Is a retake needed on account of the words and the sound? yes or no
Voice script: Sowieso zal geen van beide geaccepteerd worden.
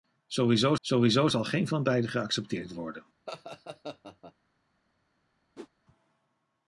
yes